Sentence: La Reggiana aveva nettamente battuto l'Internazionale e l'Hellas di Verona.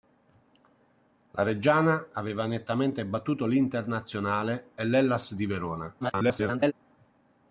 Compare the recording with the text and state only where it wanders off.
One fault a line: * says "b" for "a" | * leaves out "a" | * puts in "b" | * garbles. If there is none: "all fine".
* garbles